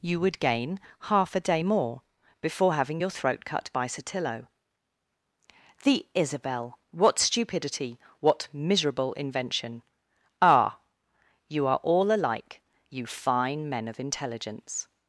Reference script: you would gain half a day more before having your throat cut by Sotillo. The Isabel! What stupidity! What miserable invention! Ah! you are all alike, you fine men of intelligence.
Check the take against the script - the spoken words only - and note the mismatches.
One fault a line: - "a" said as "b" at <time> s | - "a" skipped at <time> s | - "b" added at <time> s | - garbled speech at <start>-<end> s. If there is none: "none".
none